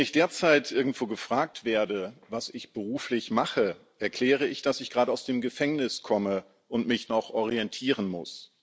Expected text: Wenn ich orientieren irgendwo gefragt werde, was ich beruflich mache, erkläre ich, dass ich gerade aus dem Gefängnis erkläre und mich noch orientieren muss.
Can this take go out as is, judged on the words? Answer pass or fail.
fail